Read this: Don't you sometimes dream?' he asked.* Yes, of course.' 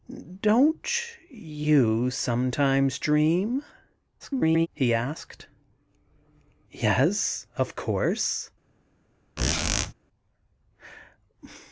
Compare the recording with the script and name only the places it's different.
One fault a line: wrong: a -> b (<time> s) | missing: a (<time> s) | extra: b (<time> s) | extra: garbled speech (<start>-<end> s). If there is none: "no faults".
extra: garbled speech (4.2-4.7 s)